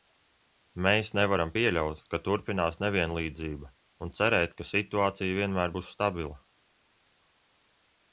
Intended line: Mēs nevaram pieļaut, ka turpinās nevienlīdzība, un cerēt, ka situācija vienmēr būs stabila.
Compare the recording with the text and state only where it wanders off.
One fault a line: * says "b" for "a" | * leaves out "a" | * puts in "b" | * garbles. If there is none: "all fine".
all fine